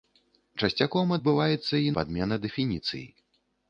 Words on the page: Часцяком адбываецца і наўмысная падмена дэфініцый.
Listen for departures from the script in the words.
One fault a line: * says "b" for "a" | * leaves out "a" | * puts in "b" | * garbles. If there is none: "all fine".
* leaves out "наўмысная"